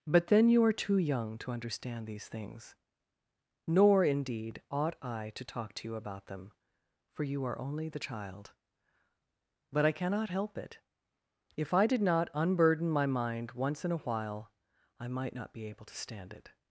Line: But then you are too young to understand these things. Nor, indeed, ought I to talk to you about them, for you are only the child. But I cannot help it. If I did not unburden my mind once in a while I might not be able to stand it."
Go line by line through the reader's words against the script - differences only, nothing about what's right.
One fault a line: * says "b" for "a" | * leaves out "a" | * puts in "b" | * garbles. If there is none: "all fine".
all fine